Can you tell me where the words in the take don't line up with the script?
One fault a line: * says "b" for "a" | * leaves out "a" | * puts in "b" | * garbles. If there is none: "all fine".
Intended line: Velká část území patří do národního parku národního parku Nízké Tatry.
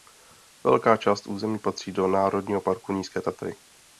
* leaves out "národního parku"